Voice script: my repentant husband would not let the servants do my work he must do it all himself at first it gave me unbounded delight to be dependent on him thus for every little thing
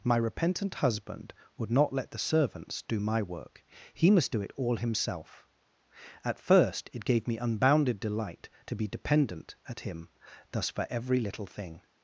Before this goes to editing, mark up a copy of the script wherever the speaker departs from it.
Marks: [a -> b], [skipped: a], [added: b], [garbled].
my repentant husband would not let the servants do my work he must do it all himself at first it gave me unbounded delight to be dependent [on -> at] him thus for every little thing